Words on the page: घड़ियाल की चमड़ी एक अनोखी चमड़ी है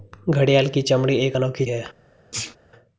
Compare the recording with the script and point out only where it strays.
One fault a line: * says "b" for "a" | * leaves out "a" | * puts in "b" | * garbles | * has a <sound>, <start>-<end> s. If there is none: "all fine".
* leaves out "चमड़ी"
* has a sneeze, 2.3-2.6 s